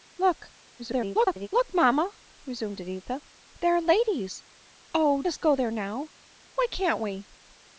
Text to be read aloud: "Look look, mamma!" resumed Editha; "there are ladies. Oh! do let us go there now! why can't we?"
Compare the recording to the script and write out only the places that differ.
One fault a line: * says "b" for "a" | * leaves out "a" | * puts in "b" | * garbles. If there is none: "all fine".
* garbles
* leaves out "do let"